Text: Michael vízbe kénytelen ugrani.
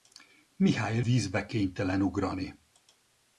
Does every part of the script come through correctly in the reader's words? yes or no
yes